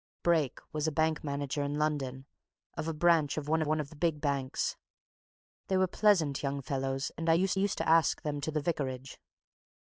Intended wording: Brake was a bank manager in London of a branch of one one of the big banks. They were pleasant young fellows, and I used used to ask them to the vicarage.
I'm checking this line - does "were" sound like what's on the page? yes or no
yes